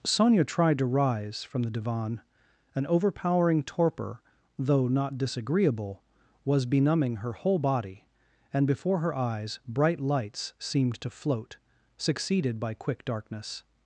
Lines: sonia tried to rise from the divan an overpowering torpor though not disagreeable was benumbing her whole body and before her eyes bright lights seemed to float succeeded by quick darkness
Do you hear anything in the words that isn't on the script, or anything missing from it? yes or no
no